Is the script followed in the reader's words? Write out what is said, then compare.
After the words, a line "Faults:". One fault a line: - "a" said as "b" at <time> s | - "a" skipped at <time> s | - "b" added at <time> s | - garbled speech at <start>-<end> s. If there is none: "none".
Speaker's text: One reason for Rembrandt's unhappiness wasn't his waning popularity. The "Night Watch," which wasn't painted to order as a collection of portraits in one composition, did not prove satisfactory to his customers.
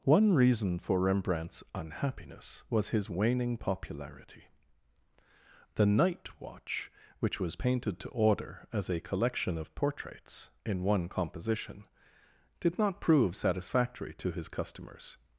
One reason for Rembrandt's unhappiness was his waning popularity. The "Night Watch," which was painted to order as a collection of portraits in one composition, did not prove satisfactory to his customers.
Faults:
- "wasn't" said as "was" at 2.7 s
- "wasn't" said as "was" at 7.4 s